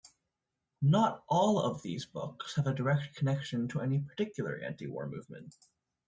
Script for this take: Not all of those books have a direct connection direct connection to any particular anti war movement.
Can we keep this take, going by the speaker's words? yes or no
no